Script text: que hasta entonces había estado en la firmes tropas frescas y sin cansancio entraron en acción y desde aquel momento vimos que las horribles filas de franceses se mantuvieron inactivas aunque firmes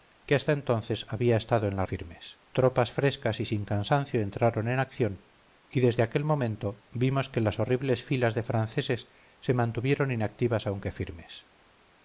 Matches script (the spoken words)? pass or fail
pass